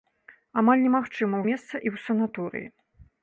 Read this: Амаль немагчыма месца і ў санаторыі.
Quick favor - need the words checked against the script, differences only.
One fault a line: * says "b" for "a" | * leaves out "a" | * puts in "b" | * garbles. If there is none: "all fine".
all fine